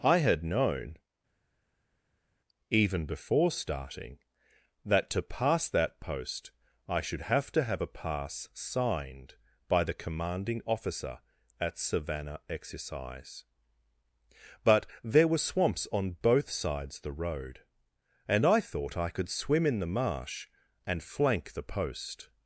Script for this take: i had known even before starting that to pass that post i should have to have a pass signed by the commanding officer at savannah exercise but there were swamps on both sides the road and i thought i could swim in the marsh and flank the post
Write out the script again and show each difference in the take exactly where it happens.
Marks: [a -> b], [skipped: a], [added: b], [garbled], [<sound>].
i had known even before starting that to pass that post i should have to have a pass signed by the commanding officer at savannah exercise but there were swamps on both sides the road and i thought i could swim in the marsh and flank the post